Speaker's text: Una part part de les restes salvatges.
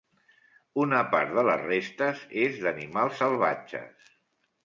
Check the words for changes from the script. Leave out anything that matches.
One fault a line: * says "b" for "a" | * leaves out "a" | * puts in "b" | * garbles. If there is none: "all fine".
* leaves out "part"
* puts in "és d'animals"